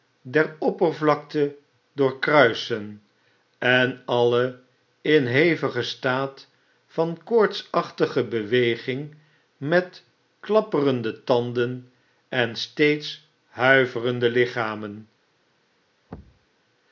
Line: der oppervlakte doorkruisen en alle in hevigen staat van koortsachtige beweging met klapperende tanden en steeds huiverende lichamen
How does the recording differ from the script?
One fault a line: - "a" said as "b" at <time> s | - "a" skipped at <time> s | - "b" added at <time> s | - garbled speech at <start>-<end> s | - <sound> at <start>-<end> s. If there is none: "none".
- thud at 16.1-16.5 s